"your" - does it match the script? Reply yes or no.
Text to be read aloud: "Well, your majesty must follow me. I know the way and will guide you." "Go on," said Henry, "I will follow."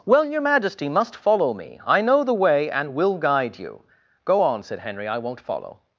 yes